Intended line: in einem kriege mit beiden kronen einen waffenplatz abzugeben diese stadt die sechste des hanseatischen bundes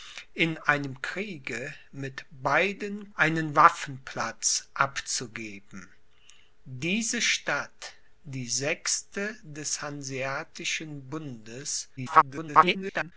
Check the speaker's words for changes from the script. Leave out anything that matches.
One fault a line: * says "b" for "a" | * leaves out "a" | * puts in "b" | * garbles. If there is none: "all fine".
* leaves out "kronen"
* garbles